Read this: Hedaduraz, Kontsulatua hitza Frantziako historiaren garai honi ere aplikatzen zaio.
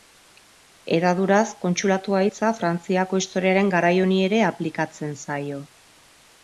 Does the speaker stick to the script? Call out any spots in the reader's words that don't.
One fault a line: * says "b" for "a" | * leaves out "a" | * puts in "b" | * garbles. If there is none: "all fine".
all fine